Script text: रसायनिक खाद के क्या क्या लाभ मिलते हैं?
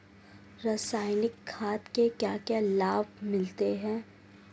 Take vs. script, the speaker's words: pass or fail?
pass